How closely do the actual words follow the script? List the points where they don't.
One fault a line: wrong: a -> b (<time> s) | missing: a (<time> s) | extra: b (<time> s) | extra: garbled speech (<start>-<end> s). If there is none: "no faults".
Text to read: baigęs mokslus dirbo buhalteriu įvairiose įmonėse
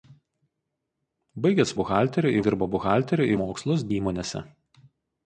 wrong: mokslus -> buhalteriu (1.8 s)
wrong: įvairiose -> mokslus (3.4 s)